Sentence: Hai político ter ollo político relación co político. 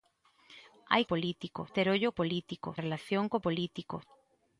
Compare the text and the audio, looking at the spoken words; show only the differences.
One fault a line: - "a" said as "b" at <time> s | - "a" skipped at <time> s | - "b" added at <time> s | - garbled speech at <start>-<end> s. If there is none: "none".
none